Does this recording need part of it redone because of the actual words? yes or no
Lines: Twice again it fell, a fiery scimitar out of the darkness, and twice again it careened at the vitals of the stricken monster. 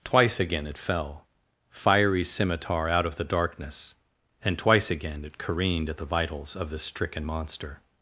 yes